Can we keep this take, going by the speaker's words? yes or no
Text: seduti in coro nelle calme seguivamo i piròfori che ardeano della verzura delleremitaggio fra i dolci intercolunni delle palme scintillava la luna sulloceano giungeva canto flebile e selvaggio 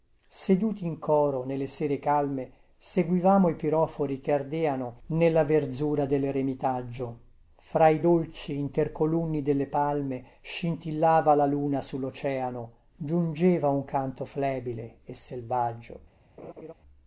no